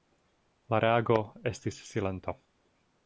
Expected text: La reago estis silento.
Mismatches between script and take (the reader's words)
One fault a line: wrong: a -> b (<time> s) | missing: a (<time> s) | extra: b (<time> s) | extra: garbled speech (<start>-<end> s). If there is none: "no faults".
no faults